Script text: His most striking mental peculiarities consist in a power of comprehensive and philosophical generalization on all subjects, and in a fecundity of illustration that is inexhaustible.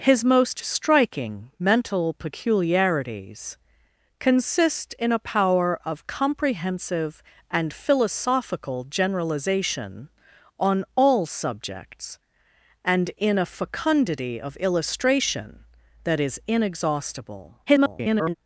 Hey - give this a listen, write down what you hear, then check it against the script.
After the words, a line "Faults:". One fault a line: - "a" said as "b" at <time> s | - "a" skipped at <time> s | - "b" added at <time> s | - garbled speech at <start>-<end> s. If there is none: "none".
His most striking mental peculiarities consist in a power of comprehensive and philosophical generalization on all subjects, and in a fecundity of illustration that is inexhaustible. [garbled]
Faults:
- garbled speech at 17.7-18.4 s